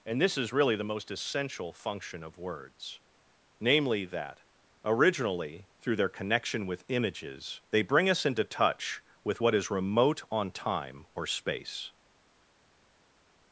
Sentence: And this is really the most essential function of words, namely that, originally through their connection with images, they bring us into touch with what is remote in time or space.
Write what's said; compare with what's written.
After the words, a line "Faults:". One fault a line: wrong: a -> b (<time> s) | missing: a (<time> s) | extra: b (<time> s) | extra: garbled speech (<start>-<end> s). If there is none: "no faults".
And this is really the most essential function of words, namely that, originally through their connection with images, they bring us into touch with what is remote on time or space.
Faults:
wrong: in -> on (10.3 s)